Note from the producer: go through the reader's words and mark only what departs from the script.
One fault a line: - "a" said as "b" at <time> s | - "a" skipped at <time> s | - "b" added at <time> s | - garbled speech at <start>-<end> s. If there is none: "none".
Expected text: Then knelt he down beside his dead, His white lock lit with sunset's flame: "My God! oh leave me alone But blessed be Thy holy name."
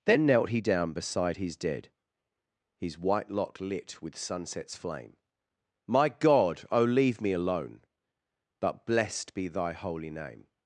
none